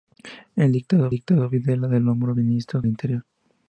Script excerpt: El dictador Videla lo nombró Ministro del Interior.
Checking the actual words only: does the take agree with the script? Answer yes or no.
no